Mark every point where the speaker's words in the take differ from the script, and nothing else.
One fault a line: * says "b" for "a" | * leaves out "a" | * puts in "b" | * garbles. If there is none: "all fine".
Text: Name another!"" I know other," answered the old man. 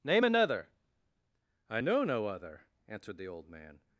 * puts in "no"